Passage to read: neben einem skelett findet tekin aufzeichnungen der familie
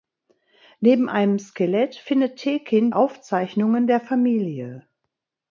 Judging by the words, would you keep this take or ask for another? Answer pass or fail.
pass